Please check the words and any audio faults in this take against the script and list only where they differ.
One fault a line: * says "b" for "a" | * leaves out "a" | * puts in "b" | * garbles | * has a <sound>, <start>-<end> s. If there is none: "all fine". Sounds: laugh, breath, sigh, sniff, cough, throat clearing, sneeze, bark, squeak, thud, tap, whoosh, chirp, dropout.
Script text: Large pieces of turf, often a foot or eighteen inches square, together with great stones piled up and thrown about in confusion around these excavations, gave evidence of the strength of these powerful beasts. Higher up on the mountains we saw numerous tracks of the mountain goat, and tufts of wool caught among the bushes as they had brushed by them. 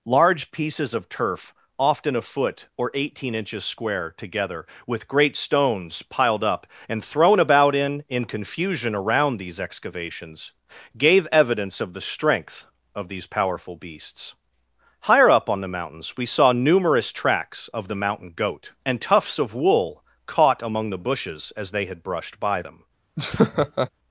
* puts in "in"
* has a laugh, 23.2-23.9 s